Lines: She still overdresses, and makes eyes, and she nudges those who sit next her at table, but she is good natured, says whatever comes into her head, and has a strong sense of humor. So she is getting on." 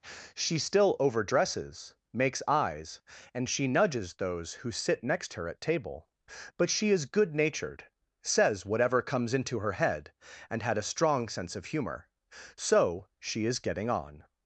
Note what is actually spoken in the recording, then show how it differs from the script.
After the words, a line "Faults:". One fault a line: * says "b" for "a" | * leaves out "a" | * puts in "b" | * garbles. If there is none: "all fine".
She still overdresses, makes eyes, and she nudges those who sit next her at table, but she is good natured, says whatever comes into her head, and had a strong sense of humor. So she is getting on."
Faults:
* leaves out "and"
* says "had" for "has"